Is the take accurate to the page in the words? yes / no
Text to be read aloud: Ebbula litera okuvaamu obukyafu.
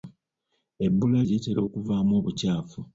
yes